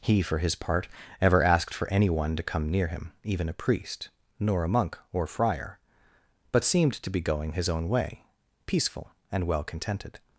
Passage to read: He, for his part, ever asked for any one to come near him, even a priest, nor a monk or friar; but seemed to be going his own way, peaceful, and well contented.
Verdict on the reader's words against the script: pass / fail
pass